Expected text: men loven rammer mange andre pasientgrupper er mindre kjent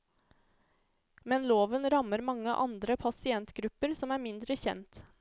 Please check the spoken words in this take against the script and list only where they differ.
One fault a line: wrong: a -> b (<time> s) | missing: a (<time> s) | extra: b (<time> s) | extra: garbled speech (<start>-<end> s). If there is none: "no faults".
extra: som (4.0 s)